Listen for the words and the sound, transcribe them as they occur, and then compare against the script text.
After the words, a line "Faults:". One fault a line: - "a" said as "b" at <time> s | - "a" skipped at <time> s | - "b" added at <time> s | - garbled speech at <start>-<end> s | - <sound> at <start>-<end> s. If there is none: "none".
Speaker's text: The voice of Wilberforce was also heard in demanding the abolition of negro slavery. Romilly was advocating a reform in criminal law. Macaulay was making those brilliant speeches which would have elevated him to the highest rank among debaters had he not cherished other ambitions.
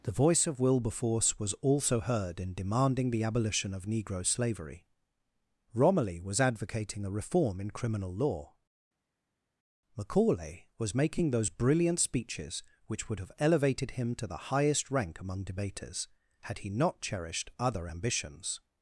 The voice of Wilberforce was also heard in demanding the abolition of negro slavery. Romilly was advocating a reform in criminal law. Macaulay was making those brilliant speeches which would have elevated him to the highest rank among debaters had he not cherished other ambitions.
Faults:
none